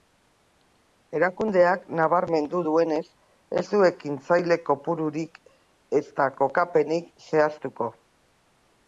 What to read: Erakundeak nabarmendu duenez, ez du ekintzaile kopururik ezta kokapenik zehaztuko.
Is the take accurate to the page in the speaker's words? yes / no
yes